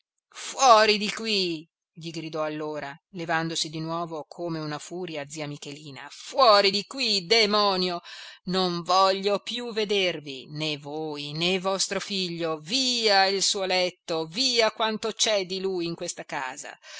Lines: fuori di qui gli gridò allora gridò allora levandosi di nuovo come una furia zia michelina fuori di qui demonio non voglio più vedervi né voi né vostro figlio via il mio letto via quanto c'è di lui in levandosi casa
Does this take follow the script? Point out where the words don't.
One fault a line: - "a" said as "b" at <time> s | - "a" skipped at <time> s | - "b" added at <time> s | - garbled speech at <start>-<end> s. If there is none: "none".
- "gridò allora" skipped at 3.0 s
- "mio" said as "suo" at 13.4 s
- "levandosi" said as "questa" at 15.9 s